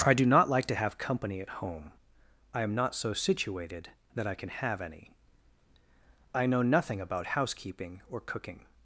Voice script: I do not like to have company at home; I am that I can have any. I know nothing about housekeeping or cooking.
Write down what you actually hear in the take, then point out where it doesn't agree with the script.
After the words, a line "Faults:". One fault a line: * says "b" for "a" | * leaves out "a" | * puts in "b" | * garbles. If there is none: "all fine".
I do not like to have company at home; I am not so situated that I can have any. I know nothing about housekeeping or cooking.
Faults:
* puts in "not so situated"